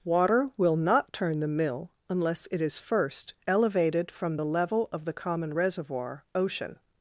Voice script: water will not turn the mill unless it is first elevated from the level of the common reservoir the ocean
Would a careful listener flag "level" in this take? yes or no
no